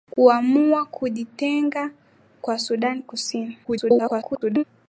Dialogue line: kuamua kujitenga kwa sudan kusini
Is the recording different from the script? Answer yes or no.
yes